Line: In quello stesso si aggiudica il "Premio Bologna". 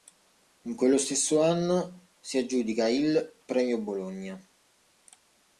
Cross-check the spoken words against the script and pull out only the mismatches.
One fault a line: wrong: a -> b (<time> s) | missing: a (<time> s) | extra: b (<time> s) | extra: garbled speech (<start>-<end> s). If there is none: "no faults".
extra: anno (1.4 s)